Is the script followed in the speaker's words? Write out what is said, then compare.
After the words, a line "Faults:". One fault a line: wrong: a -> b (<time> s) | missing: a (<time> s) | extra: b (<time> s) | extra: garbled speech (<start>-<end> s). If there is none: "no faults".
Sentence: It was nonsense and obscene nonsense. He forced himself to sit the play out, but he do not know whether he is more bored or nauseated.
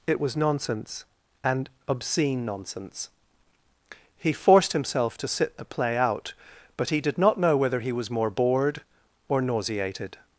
It was nonsense and obscene nonsense. He forced himself to sit the play out, but he did not know whether he was more bored or nauseated.
Faults:
wrong: do -> did (7.0 s)
wrong: is -> was (7.9 s)